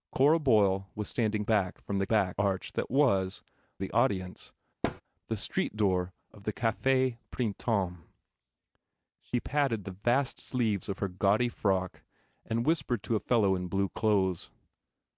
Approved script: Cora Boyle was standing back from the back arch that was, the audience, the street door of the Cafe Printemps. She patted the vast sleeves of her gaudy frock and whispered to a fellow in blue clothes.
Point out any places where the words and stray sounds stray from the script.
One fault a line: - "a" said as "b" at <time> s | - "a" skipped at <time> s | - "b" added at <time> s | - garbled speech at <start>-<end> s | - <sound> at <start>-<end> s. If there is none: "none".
- thud at 4.8-5.0 s